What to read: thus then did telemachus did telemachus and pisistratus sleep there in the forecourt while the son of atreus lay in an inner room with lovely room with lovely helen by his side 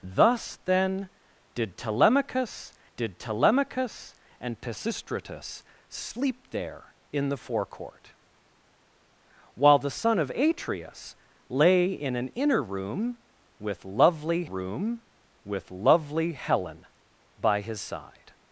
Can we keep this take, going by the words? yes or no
yes